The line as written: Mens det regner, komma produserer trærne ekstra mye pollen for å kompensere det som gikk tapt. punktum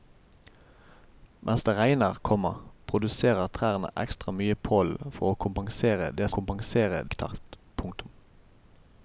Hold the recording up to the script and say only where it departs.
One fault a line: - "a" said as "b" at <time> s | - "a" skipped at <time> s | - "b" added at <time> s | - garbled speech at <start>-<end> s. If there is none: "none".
- "som" said as "kompensere" at 6.4 s